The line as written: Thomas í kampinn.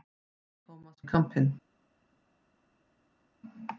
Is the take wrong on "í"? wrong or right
right